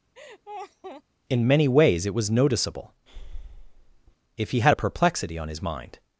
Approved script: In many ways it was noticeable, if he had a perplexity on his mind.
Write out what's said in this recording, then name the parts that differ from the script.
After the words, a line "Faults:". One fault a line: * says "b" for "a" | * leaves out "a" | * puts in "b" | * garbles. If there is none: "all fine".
In many ways it was noticeable, if he had a perplexity on his mind.
Faults:
all fine